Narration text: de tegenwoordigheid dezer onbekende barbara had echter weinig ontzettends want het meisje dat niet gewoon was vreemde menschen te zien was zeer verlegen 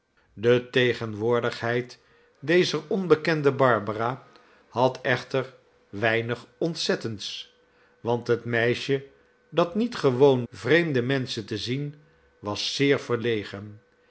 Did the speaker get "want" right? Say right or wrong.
right